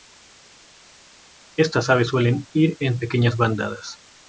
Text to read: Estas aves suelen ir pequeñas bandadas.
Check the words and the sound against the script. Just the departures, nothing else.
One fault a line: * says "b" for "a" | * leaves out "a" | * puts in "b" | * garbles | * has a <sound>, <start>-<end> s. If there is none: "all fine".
* puts in "en"